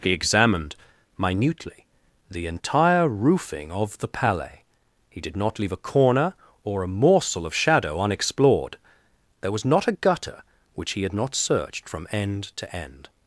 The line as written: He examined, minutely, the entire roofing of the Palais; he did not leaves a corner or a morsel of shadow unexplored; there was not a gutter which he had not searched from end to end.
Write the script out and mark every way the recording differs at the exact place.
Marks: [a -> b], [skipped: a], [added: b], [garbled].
He examined, minutely, the entire roofing of the Palais; he did not [leaves -> leave] a corner or a morsel of shadow unexplored; there was not a gutter which he had not searched from end to end.